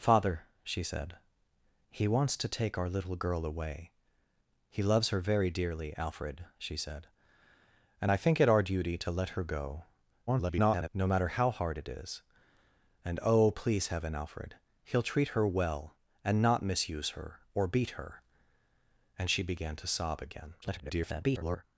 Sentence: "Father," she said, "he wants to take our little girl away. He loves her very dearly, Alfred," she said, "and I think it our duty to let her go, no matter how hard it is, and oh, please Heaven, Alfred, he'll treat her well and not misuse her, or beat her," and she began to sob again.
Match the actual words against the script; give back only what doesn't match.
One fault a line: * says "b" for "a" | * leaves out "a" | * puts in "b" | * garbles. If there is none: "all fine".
* garbles
* garbles